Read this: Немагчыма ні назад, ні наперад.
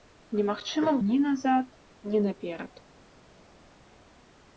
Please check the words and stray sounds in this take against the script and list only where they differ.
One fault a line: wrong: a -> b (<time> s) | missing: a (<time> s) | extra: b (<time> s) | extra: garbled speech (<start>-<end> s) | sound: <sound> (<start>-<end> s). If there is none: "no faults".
no faults